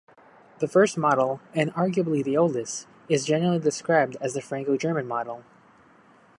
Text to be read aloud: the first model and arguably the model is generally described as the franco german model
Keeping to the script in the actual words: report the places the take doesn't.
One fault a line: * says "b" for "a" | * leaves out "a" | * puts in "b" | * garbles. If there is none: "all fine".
* says "oldest" for "model"